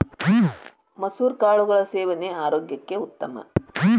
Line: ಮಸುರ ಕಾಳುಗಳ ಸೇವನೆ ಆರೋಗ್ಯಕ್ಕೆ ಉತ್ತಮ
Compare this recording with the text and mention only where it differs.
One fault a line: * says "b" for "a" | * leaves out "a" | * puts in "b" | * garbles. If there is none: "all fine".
all fine